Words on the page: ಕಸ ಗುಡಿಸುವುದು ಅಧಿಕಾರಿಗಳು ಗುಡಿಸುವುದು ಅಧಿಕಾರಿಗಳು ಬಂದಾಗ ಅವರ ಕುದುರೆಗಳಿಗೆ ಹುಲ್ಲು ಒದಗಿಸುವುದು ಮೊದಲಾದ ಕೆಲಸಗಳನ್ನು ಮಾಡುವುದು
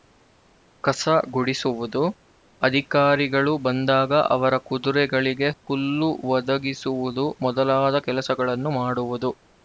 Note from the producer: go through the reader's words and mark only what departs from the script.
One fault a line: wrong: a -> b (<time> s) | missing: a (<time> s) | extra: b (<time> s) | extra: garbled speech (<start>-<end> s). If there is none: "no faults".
missing: ಗುಡಿಸುವುದು ಅಧಿಕಾರಿಗಳು (3.5 s)